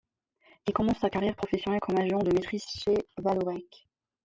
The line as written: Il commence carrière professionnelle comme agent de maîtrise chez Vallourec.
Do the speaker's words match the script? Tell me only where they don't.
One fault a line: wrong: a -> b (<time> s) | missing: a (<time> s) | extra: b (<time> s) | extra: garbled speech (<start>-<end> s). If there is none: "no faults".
extra: sa (1.0 s)